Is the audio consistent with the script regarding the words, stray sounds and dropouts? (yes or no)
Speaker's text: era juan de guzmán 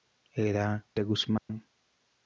no